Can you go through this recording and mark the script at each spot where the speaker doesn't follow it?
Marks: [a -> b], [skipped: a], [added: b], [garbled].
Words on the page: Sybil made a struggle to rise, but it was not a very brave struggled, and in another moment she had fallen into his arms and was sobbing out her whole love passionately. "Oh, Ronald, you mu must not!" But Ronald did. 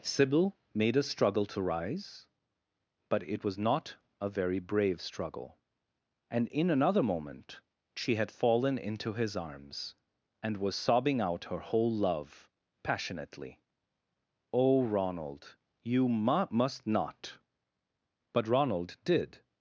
Sybil made a struggle to rise, but it was not a very brave [struggled, -> struggle] and in another moment she had fallen into his arms and was sobbing out her whole love passionately. "Oh, Ronald, you mu must not!" But Ronald did.